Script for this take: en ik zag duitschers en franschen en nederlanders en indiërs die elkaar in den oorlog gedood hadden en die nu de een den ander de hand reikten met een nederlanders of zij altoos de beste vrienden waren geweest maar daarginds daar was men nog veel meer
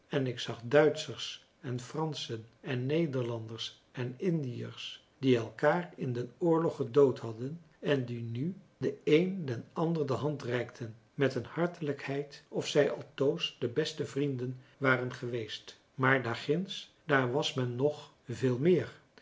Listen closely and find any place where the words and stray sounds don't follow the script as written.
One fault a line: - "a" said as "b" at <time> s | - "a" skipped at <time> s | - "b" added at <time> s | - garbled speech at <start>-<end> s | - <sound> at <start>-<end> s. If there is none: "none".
- "nederlanders" said as "hartelijkheid" at 11.4 s